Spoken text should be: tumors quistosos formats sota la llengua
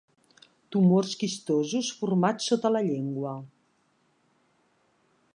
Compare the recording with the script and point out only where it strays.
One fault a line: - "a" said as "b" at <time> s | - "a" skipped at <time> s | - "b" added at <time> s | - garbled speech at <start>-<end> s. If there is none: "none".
none